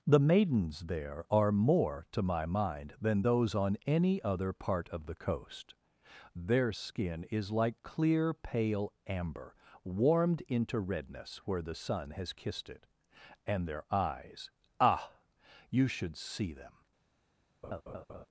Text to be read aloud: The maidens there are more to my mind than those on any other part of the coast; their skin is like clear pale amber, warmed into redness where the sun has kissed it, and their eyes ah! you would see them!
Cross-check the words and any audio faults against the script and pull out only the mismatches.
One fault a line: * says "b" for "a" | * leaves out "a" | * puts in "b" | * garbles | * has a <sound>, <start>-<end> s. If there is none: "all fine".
* says "should" for "would"
* has a laugh, 17.6-18.3 s